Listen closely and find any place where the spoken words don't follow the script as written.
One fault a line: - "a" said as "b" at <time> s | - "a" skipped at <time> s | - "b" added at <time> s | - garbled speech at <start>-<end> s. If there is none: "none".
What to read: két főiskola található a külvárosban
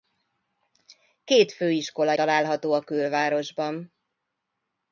none